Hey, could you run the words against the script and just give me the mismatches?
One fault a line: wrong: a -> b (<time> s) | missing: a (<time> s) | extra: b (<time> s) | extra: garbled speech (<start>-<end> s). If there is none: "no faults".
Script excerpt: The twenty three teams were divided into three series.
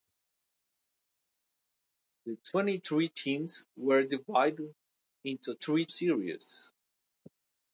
no faults